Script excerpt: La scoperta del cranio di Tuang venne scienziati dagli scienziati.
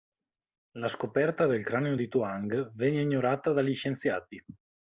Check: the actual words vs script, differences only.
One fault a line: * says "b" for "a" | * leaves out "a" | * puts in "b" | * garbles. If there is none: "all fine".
* says "ignorata" for "scienziati"